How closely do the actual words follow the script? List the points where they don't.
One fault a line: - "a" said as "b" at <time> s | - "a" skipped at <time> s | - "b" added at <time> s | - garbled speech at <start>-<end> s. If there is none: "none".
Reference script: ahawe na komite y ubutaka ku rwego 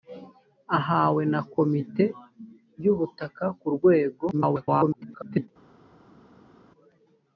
- garbled speech at 4.3-5.5 s